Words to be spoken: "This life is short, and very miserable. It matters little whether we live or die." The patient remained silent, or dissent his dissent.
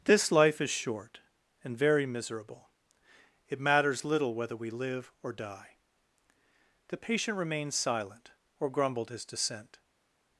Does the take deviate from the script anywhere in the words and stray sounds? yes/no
yes